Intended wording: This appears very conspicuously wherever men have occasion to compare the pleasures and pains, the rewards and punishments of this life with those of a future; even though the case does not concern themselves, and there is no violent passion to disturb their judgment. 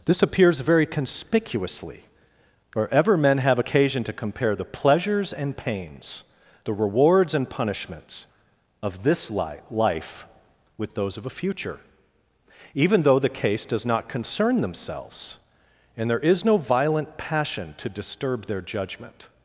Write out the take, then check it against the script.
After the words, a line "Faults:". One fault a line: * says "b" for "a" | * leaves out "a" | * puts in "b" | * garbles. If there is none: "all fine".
This appears very conspicuously wherever men have occasion to compare the pleasures and pains, the rewards and punishments of this life with those of a future; even though the case does not concern themselves, and there is no violent passion to disturb their judgment.
Faults:
all fine